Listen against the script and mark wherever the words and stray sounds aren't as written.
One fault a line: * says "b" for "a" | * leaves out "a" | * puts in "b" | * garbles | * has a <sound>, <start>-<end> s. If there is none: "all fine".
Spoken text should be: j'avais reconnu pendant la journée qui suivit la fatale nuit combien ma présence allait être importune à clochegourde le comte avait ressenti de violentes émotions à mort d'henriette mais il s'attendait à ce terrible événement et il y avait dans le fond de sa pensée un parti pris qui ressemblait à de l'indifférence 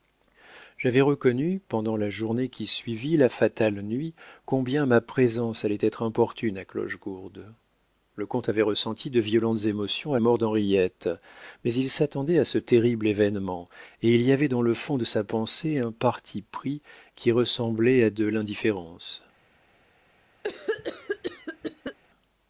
* has a cough, 20.4-22.0 s